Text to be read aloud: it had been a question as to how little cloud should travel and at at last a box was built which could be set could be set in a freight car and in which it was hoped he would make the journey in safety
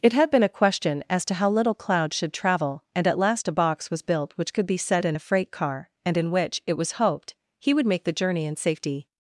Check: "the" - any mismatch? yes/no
no